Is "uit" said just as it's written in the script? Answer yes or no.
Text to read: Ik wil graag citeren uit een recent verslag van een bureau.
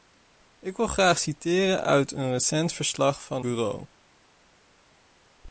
yes